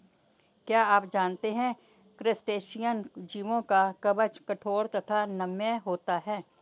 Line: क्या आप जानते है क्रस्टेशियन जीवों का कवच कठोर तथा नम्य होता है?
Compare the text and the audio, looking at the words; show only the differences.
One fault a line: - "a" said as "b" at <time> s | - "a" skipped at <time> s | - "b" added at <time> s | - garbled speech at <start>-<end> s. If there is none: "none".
none